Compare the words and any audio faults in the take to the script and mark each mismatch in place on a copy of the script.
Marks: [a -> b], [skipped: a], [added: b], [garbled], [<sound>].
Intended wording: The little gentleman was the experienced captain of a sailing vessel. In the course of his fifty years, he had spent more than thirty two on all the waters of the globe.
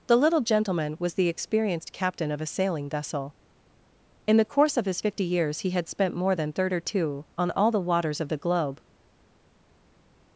The little gentleman was the experienced captain of a sailing vessel. In the course of his fifty years, he had spent more than thirty two on all the waters of the globe.